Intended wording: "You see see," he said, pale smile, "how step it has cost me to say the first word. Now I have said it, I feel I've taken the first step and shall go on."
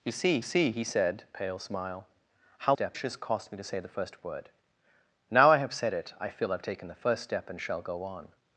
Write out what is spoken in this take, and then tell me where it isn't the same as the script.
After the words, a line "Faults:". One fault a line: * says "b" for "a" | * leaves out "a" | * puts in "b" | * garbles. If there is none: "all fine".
"You see see," he said, pale smile, "how step it has cost me to say the first word. Now I have said it, I feel I've taken the first step and shall go on."
Faults:
all fine